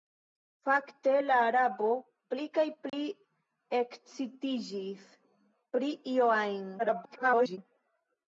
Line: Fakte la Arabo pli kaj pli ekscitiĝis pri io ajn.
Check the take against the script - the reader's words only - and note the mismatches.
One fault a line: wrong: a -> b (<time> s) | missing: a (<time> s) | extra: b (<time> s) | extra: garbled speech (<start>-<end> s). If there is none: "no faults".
extra: garbled speech (6.8-7.6 s)